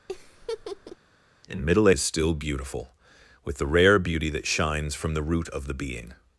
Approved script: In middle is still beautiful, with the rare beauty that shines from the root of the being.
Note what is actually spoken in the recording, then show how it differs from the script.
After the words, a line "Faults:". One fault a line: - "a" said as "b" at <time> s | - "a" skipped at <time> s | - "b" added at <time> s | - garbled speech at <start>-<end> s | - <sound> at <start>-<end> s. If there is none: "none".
In middle is still beautiful, with the rare beauty that shines from the root of the being.
Faults:
- laugh at 0.1-1.0 s